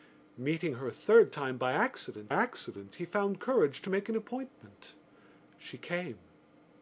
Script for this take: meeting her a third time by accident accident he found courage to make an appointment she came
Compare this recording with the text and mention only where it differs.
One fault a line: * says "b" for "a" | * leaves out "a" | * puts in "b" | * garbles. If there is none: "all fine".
all fine